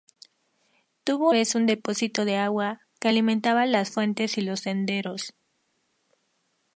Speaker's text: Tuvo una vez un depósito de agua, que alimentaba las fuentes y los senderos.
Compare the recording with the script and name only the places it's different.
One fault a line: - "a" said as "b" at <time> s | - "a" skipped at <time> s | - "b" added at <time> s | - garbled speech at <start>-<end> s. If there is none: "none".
- "una" skipped at 1.3 s